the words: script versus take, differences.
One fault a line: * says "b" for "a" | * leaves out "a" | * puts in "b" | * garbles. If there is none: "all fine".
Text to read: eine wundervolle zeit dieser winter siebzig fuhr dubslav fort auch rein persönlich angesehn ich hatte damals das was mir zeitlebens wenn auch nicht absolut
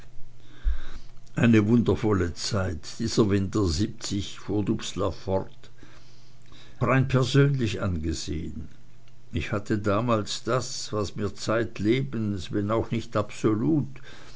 * leaves out "auch"